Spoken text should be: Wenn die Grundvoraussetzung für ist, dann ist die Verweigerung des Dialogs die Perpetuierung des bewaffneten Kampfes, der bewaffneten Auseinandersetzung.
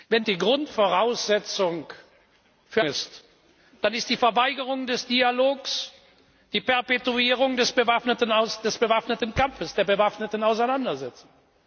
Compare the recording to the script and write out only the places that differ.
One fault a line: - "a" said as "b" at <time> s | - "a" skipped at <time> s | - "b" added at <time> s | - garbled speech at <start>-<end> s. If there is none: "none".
none